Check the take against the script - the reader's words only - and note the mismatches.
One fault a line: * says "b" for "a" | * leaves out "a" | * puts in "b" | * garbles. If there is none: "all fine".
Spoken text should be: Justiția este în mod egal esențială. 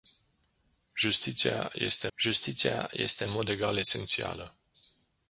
* puts in "justiția este"